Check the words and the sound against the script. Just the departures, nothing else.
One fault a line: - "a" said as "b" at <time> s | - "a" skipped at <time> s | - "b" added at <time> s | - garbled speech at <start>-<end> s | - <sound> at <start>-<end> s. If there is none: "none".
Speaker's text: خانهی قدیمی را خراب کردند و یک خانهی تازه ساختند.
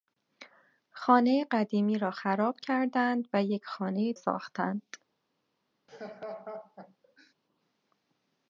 - "تازه" skipped at 4.1 s
- laugh at 5.9-7.3 s